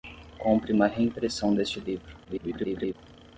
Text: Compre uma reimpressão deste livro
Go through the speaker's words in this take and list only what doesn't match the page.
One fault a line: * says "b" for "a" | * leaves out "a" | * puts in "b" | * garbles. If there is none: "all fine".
* garbles